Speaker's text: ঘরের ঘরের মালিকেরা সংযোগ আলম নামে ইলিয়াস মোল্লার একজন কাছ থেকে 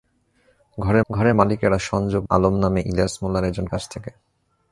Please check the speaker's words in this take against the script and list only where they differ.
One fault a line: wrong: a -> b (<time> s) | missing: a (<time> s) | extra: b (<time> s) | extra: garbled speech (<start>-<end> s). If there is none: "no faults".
no faults